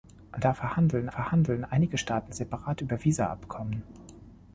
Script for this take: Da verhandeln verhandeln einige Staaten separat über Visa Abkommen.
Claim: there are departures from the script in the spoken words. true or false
false